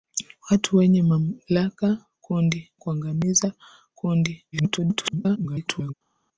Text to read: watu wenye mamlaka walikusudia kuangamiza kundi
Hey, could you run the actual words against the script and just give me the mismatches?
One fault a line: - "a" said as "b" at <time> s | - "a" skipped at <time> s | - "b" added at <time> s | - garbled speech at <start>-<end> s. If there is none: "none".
- "walikusudia" said as "kundi" at 2.2 s
- garbled speech at 4.5-5.9 s